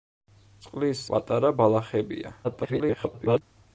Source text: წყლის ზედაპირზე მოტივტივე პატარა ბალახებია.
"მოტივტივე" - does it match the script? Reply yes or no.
no